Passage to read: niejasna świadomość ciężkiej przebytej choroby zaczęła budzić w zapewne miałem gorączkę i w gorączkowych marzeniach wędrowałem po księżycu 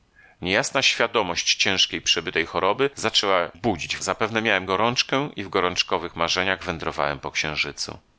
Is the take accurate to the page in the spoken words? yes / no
yes